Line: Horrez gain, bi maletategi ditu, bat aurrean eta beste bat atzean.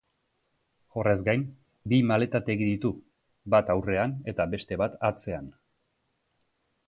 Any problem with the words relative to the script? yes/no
no